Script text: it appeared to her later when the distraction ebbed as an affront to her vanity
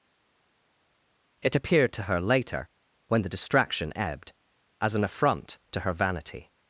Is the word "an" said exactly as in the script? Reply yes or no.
yes